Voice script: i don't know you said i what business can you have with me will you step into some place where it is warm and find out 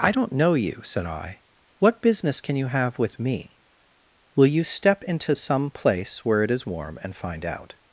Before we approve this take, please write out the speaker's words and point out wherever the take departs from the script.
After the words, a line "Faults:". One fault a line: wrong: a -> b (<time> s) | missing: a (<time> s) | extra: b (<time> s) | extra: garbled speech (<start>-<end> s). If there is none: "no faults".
i don't know you said i what business can you have with me will you step into some place where it is warm and find out
Faults:
no faults